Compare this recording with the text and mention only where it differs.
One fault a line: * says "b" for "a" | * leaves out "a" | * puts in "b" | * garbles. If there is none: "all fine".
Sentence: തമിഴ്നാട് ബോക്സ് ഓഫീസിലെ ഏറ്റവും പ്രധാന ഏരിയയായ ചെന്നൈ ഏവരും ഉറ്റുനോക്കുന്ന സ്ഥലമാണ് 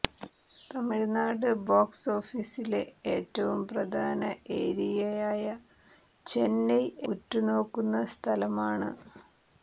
* leaves out "ഏവരും"